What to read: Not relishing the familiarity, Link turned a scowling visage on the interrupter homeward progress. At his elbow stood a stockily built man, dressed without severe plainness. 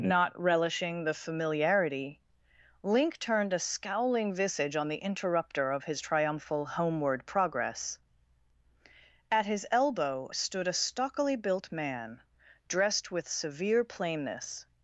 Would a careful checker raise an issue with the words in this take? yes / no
yes